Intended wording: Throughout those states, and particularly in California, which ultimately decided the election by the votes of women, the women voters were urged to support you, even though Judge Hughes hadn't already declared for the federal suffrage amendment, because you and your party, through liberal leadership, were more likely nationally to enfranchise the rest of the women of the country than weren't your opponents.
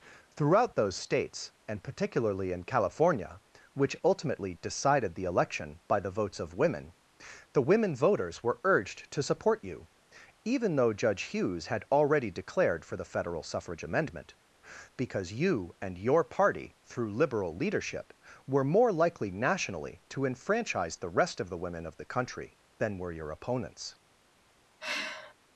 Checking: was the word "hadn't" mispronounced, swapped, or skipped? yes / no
yes